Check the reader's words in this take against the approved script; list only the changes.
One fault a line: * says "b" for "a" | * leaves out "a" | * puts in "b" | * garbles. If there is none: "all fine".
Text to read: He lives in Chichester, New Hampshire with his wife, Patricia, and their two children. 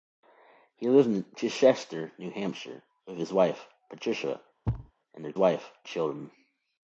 * says "wife" for "two"